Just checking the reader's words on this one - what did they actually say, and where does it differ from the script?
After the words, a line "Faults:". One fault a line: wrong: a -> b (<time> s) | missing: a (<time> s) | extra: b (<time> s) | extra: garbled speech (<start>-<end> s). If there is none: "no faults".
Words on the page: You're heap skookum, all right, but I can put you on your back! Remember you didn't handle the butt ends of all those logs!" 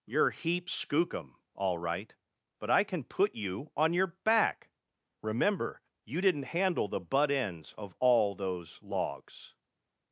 You're heap skookum, all right, but I can put you on your back! Remember you didn't handle the butt ends of all those logs!"
Faults:
no faults